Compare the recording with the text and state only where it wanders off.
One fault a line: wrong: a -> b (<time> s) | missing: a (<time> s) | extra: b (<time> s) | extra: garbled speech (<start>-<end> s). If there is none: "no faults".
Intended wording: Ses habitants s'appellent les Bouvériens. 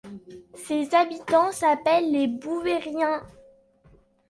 no faults